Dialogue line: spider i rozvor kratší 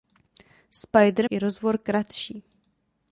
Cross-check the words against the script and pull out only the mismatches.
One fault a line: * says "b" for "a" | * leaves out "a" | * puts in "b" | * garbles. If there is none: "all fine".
all fine